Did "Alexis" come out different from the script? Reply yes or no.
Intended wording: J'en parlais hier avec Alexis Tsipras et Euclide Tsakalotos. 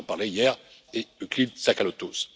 yes